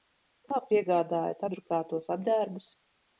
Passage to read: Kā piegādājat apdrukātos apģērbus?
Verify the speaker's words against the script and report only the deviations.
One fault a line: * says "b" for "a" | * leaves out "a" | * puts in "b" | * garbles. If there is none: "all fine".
all fine